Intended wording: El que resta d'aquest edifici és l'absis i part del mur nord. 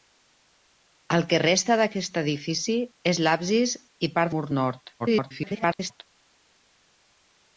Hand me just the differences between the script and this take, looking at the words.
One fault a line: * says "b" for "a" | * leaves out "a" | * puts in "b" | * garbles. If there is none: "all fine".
* leaves out "del"
* garbles